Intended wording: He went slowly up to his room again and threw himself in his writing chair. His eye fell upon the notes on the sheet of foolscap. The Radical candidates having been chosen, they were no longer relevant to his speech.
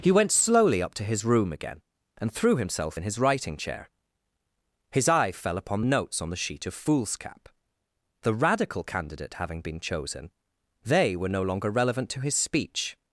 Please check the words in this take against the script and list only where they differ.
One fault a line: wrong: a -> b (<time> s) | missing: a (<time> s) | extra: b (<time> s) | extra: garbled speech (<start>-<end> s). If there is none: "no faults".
wrong: candidates -> candidate (8.8 s)